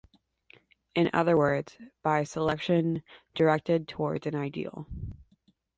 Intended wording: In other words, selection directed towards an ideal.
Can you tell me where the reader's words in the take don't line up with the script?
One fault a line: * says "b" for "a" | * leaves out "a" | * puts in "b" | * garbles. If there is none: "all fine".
* puts in "by"